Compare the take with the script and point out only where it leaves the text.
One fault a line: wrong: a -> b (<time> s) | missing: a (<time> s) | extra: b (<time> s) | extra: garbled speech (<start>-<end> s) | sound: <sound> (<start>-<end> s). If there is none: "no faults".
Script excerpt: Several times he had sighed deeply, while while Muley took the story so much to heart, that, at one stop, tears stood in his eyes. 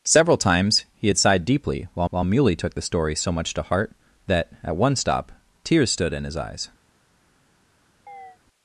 sound: chirp (8.1-8.4 s)